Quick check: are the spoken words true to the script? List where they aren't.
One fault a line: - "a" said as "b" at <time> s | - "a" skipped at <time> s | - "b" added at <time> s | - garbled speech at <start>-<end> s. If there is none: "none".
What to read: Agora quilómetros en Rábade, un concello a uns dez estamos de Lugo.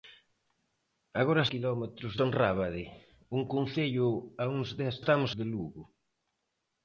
none